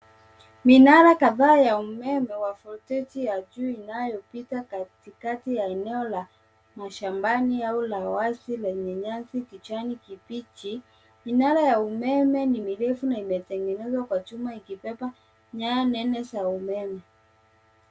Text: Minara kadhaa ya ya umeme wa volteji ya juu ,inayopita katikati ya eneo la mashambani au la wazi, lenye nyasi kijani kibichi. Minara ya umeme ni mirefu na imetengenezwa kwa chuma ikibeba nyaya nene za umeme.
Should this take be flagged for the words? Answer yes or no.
yes